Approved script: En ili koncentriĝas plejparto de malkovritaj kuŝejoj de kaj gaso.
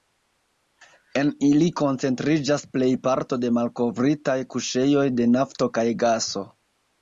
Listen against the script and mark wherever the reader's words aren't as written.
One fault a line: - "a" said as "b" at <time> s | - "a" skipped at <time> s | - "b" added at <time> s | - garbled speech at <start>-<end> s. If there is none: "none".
- "nafto" added at 5.4 s